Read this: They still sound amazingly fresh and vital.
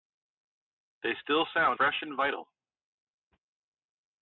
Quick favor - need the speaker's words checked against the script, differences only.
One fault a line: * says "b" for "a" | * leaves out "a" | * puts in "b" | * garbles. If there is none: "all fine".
* leaves out "amazingly"